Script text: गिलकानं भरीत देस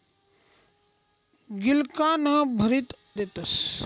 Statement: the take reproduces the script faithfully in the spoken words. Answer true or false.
true